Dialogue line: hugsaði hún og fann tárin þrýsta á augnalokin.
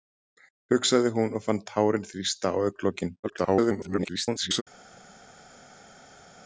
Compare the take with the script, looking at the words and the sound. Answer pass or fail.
fail